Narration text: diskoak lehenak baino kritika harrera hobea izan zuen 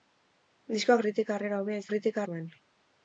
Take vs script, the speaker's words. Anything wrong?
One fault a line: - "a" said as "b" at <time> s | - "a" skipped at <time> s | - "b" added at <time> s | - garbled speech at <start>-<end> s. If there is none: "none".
- "lehenak baino" skipped at 1.0 s
- "izan" said as "kritika" at 1.9 s